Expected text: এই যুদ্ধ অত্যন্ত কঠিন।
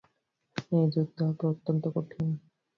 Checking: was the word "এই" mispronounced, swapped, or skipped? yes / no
no